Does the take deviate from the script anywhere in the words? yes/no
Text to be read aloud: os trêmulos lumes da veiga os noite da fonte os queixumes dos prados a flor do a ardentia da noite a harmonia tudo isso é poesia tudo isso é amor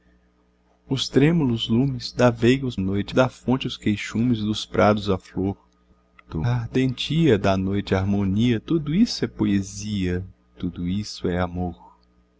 no